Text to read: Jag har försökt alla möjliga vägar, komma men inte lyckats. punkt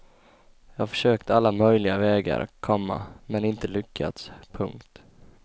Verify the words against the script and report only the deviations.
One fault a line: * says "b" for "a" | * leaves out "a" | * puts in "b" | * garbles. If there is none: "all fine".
all fine